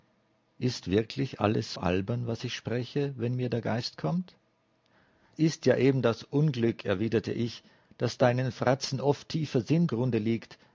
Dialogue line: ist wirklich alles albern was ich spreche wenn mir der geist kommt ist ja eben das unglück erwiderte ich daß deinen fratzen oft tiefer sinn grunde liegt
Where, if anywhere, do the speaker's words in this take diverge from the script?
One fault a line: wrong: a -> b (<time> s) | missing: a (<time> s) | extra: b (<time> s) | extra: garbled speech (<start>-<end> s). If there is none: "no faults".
no faults